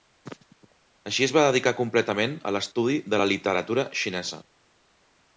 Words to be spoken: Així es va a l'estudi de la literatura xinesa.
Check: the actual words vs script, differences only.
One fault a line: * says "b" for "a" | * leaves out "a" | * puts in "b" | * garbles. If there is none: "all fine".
* puts in "dedicar completament"